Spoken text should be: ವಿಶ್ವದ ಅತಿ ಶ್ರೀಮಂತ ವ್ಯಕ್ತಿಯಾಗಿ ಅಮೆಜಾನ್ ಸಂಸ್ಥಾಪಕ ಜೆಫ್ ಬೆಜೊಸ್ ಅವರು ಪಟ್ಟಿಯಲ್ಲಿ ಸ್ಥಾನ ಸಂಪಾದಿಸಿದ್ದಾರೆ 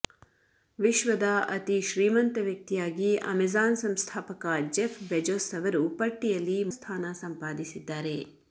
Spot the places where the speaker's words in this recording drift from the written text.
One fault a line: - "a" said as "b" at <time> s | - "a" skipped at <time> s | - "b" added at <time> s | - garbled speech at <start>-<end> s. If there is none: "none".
none